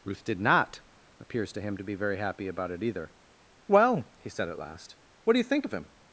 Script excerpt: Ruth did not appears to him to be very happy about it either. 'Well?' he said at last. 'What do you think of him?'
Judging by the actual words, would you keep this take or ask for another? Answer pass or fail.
pass